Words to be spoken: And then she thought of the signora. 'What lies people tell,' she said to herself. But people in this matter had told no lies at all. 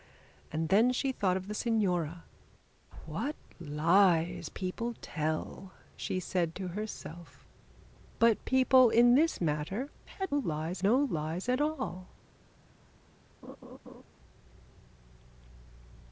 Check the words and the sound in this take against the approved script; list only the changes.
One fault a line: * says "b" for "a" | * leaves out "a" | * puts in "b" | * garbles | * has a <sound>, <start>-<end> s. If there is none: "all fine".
* says "lies" for "told"
* has a laugh, 13.4-14.0 s